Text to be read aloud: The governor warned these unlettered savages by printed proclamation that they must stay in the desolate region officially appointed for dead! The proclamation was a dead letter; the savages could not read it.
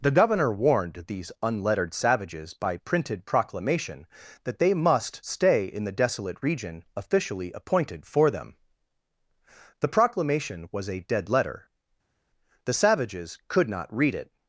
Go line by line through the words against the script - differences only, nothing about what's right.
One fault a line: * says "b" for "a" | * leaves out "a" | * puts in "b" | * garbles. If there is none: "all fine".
* says "them" for "dead"